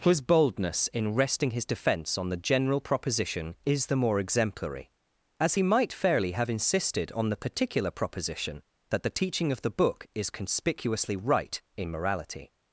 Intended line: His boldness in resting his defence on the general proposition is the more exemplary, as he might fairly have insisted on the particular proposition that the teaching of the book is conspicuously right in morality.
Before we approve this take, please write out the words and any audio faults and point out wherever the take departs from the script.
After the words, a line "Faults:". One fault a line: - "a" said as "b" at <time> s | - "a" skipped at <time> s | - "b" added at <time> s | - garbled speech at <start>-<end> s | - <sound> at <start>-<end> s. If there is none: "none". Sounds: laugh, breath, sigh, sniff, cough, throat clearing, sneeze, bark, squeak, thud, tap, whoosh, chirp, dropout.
His boldness in resting his defence on the general proposition is the more exemplary, as he might fairly have insisted on the particular proposition that the teaching of the book is conspicuously right in morality.
Faults:
none